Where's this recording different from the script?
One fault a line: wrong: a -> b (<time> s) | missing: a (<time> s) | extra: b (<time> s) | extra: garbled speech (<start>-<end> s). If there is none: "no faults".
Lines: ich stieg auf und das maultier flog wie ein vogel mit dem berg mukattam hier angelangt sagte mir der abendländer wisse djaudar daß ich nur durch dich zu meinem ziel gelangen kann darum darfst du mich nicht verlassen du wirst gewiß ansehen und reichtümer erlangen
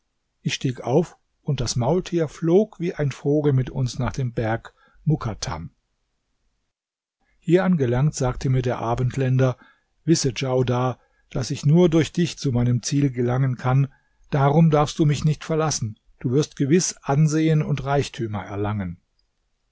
extra: uns nach (3.7 s)